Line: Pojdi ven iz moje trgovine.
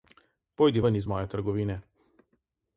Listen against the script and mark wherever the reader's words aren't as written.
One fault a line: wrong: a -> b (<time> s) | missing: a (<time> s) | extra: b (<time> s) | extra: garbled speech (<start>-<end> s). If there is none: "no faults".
no faults